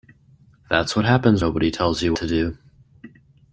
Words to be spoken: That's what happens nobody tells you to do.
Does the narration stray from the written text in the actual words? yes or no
no